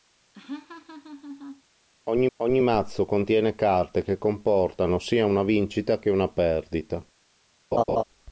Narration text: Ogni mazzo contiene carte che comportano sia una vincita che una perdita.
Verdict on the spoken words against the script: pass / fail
fail